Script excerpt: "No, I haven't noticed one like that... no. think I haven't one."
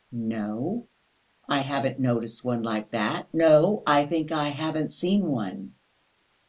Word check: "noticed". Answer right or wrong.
right